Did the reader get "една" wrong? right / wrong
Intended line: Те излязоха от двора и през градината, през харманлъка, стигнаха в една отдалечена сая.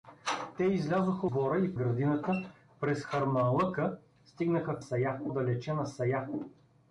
wrong